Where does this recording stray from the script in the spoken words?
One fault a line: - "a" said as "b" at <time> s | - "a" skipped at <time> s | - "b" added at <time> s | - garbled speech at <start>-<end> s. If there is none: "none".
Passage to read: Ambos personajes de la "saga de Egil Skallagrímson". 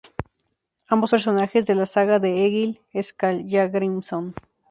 none